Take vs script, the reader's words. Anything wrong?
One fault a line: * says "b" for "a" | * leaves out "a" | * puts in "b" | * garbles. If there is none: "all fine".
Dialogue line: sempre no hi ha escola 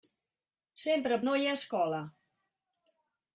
all fine